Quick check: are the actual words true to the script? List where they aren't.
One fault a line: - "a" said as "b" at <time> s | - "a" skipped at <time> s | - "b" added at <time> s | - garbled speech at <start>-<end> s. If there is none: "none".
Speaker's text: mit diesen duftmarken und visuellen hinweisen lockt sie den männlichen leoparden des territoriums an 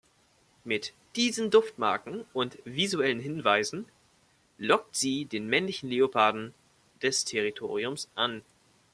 none